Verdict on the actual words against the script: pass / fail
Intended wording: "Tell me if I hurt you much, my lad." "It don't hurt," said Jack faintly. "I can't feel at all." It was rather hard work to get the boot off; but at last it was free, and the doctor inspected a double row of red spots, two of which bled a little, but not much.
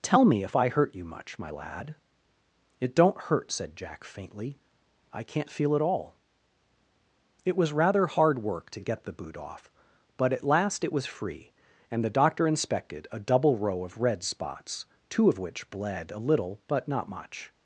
pass